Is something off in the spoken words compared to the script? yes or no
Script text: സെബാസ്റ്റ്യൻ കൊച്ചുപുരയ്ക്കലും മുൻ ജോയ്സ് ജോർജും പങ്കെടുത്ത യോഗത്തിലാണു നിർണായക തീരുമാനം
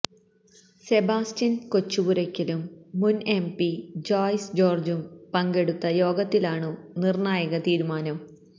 yes